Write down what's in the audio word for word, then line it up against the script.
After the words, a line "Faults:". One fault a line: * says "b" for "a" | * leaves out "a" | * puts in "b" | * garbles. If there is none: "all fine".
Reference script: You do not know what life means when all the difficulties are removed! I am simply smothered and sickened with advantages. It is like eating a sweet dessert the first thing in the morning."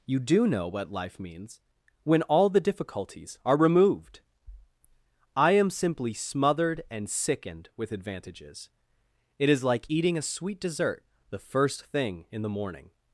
You do know what life means when all the difficulties are removed! I am simply smothered and sickened with advantages. It is like eating a sweet dessert the first thing in the morning."
Faults:
* leaves out "not"